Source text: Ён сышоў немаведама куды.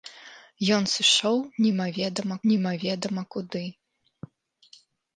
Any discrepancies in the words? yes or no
yes